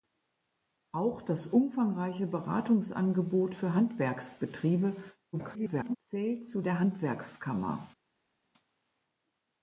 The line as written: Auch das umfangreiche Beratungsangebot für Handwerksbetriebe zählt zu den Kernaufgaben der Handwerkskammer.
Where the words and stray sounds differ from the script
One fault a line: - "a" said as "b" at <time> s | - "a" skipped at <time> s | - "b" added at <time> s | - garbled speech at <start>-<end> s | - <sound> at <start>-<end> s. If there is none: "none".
- garbled speech at 5.3-6.0 s
- "den Kernaufgaben" skipped at 6.6 s